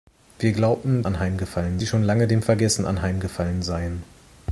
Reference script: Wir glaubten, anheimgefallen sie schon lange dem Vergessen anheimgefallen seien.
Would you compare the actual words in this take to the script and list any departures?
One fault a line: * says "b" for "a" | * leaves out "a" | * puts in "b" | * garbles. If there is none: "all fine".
all fine